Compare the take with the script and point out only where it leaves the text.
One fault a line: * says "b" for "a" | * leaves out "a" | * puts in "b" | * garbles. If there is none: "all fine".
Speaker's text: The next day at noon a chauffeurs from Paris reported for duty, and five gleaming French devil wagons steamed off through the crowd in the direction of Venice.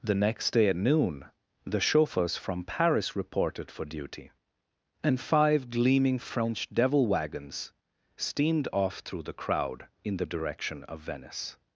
* says "the" for "a"